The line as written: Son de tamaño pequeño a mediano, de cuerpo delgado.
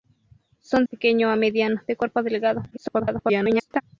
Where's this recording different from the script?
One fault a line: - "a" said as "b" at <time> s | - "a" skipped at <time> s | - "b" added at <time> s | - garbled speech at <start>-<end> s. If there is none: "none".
- "de tamaño" skipped at 0.8 s
- garbled speech at 2.7-3.8 s